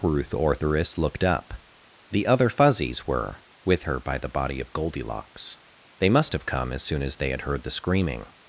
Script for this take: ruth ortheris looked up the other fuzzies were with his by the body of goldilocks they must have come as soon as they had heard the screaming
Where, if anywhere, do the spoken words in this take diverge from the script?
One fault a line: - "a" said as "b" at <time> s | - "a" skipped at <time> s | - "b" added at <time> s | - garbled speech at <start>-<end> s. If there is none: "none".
- "his" said as "her" at 3.8 s